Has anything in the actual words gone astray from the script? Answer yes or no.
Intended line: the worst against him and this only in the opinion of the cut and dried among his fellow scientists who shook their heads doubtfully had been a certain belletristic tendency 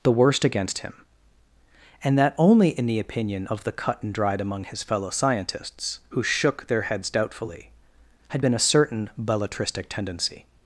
yes